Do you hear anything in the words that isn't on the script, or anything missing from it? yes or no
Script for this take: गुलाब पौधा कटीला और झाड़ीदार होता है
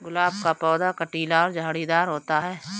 yes